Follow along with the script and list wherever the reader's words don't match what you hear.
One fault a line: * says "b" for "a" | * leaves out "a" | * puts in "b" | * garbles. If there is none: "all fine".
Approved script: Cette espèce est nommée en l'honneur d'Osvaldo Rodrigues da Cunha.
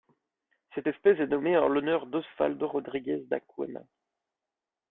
all fine